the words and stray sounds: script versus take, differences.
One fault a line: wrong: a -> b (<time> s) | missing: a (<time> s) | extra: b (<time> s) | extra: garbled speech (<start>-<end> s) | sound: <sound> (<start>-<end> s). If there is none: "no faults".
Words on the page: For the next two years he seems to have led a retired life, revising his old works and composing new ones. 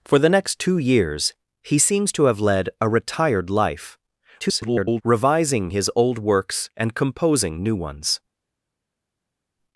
extra: garbled speech (4.4-5.0 s)